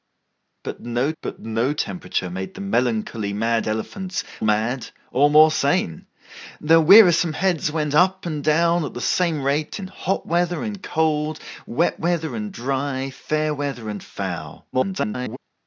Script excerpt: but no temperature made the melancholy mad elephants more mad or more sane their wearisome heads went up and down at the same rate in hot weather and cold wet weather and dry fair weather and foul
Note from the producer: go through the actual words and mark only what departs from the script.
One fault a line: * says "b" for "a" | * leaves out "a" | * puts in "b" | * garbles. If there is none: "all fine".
* puts in "but no"
* leaves out "more"
* garbles